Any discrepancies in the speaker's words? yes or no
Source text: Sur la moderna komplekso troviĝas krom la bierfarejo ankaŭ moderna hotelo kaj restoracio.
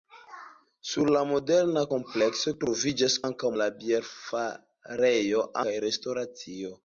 yes